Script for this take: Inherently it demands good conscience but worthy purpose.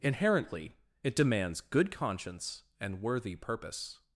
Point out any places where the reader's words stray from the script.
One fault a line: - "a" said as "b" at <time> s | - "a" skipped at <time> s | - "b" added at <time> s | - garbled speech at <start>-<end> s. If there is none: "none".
- "but" said as "and" at 2.8 s